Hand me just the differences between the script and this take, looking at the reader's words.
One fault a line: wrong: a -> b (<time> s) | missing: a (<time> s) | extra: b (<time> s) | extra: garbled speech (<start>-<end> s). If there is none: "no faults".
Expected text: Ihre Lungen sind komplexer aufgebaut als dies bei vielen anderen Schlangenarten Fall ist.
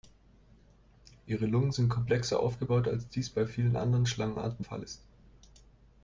no faults